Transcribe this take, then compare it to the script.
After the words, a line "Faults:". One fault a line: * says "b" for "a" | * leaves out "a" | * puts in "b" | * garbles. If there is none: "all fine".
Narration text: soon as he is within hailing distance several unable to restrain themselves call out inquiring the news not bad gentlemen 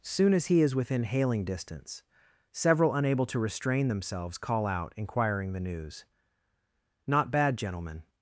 soon as he is within hailing distance several unable to restrain themselves call out inquiring the news not bad gentlemen
Faults:
all fine